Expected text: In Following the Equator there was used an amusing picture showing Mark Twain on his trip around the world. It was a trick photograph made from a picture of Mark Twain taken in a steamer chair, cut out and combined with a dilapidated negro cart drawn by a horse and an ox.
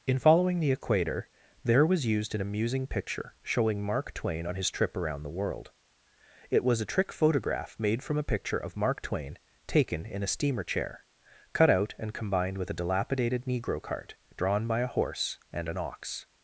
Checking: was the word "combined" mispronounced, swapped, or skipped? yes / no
no